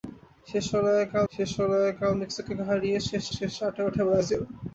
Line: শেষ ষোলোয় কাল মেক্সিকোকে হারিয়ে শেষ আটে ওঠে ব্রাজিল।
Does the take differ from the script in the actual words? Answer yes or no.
yes